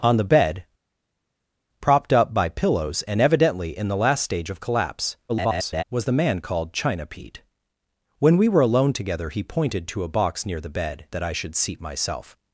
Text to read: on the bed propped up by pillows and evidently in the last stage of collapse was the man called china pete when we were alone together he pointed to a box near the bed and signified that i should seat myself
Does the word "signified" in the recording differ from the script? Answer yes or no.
yes